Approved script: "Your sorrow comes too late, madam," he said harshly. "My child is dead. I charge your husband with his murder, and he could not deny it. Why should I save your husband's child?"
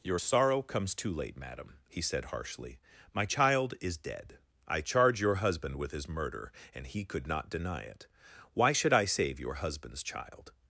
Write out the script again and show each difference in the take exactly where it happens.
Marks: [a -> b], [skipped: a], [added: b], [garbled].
"Your sorrow comes too late, madam," he said harshly. "My child is dead. I charge your husband with his murder, and he could not deny it. Why should I save your husband's child?"